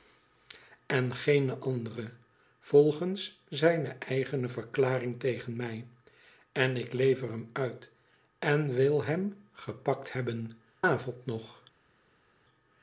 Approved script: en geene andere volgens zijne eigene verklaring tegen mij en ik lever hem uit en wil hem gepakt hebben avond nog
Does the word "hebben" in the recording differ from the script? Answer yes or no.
no